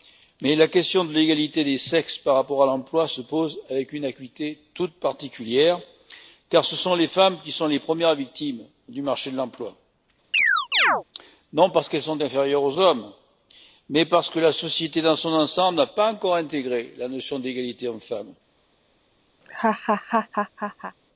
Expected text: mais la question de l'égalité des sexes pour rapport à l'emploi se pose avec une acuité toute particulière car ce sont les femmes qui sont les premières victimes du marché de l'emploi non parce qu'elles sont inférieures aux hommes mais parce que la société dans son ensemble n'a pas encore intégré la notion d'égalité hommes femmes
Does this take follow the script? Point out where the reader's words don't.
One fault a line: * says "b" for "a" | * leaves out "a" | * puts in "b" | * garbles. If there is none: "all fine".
* says "par" for "pour"